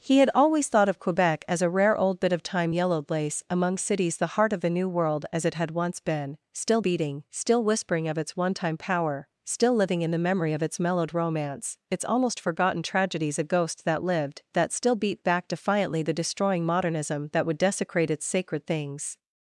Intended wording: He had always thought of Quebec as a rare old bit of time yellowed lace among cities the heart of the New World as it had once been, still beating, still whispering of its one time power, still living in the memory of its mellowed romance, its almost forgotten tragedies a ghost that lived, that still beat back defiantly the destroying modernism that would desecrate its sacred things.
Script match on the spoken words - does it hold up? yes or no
yes